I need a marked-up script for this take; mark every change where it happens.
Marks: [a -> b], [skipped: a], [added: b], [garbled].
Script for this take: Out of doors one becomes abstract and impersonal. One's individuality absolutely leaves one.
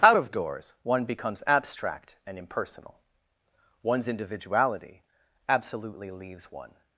Out of doors one becomes abstract and impersonal. One's individuality absolutely leaves one.